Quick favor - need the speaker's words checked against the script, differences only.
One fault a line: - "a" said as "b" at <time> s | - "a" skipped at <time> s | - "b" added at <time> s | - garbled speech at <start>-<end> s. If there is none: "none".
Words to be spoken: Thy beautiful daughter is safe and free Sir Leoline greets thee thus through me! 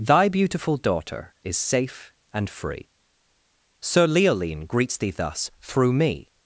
none